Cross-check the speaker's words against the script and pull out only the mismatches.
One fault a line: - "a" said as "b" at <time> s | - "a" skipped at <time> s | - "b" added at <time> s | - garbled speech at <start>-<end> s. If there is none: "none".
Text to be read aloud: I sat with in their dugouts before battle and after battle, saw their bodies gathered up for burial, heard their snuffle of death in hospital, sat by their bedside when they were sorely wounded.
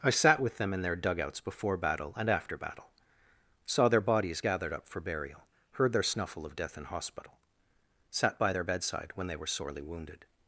- "them" added at 0.6 s